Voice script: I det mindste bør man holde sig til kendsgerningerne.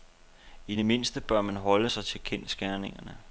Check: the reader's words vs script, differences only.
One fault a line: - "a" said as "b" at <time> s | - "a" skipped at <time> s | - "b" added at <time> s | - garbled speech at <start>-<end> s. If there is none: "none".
none